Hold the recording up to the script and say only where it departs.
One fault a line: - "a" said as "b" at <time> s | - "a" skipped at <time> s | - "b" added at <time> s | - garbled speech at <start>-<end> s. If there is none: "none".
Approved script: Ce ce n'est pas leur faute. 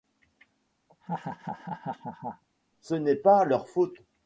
- "ce" skipped at 2.9 s